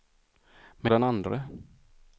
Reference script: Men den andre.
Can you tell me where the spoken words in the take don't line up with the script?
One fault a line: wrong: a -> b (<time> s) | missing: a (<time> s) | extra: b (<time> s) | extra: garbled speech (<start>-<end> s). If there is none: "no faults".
no faults